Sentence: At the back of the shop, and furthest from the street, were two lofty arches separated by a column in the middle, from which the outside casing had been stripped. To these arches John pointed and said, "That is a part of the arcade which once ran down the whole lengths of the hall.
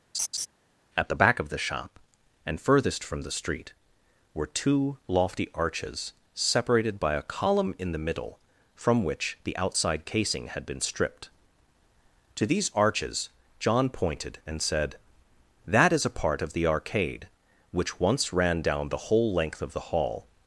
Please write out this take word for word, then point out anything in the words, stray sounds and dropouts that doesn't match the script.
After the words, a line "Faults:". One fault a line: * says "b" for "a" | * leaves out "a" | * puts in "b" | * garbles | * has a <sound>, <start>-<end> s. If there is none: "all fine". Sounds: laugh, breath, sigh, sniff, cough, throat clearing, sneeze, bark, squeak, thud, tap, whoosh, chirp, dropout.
At the back of the shop, and furthest from the street, were two lofty arches separated by a column in the middle, from which the outside casing had been stripped. To these arches John pointed and said, "That is a part of the arcade which once ran down the whole length of the hall.
Faults:
* has a laugh, 0.1-0.5 s
* says "length" for "lengths"